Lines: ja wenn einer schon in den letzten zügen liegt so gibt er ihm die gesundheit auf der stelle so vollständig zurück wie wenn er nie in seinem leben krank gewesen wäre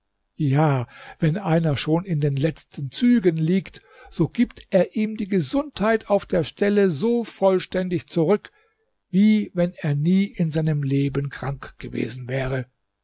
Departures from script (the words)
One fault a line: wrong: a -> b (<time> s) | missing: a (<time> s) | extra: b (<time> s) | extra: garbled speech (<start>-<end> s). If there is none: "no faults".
no faults